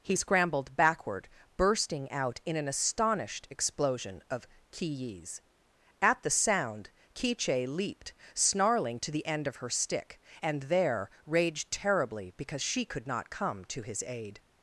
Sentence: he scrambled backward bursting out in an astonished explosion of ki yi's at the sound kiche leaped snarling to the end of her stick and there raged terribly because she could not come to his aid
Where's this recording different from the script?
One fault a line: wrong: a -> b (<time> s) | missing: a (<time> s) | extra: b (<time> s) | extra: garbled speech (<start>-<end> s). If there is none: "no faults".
no faults